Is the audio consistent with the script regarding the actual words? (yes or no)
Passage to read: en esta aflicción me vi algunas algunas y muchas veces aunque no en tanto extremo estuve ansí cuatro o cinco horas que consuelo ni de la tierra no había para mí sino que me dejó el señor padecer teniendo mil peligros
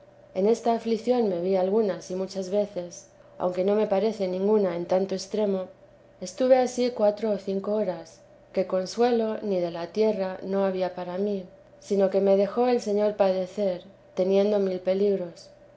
no